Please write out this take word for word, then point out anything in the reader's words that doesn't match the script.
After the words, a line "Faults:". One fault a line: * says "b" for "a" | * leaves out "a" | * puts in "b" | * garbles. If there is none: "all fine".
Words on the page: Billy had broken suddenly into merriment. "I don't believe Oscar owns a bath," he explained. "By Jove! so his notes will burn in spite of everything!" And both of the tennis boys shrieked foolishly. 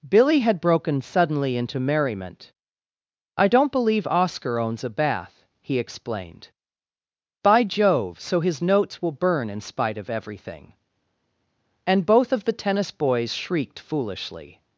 Billy had broken suddenly into merriment. "I don't believe Oscar owns a bath," he explained. "By Jove! so his notes will burn in spite of everything!" And both of the tennis boys shrieked foolishly.
Faults:
all fine